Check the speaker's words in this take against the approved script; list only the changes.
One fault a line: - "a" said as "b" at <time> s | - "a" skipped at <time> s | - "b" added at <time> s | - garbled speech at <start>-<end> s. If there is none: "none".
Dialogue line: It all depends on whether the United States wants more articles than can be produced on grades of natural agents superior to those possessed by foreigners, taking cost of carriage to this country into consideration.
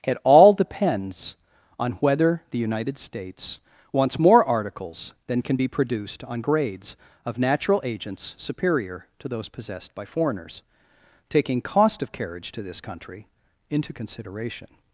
none